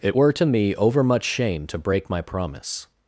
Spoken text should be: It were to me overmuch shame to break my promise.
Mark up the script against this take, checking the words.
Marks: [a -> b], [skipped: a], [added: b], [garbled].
It were to me overmuch shame to break my promise.